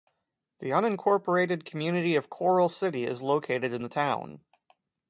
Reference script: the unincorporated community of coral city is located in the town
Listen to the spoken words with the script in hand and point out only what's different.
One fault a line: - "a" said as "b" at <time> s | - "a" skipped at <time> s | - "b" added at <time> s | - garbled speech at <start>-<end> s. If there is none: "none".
none